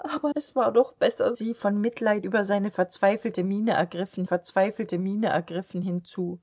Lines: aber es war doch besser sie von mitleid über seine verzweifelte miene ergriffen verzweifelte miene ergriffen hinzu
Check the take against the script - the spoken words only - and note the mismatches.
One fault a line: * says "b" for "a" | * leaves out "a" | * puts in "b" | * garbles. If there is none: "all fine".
all fine